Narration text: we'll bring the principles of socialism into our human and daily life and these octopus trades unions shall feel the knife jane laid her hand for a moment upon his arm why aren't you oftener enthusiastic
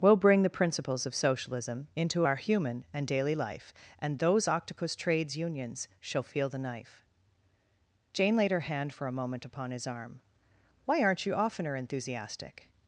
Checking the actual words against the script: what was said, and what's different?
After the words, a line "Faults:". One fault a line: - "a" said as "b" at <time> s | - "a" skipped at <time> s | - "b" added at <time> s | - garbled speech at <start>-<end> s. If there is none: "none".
we'll bring the principles of socialism into our human and daily life and those octopus trades unions shall feel the knife jane laid her hand for a moment upon his arm why aren't you oftener enthusiastic
Faults:
- "these" said as "those" at 4.2 s